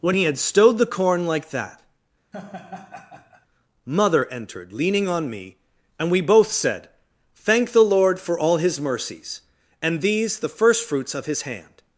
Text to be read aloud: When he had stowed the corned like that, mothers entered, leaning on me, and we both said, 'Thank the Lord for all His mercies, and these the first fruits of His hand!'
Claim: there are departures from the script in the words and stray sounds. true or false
true